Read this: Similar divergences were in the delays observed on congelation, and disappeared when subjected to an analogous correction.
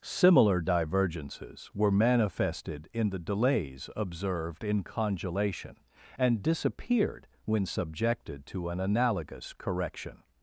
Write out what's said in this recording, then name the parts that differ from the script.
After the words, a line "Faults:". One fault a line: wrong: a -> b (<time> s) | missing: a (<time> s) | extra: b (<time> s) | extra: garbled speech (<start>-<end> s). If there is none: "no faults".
Similar divergences were manifested in the delays observed in congelation, and disappeared when subjected to an analogous correction.
Faults:
extra: manifested (1.9 s)
wrong: on -> in (4.6 s)